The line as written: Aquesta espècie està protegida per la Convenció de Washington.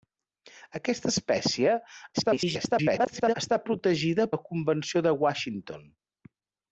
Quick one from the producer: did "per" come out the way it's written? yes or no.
no